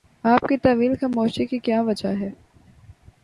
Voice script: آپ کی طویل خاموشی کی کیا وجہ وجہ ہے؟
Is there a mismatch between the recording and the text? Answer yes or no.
yes